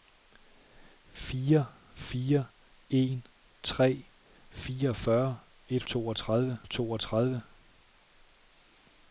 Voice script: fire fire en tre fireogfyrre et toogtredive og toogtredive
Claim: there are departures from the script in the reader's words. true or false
false